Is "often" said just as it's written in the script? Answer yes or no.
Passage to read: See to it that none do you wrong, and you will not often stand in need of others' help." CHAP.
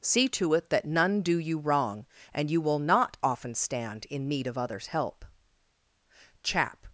yes